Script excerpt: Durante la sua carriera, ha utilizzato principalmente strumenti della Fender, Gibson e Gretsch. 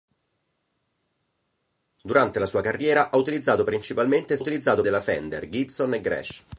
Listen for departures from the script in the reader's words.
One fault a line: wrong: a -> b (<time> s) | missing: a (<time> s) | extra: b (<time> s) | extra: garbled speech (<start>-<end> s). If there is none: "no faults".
wrong: strumenti -> utilizzato (4.4 s)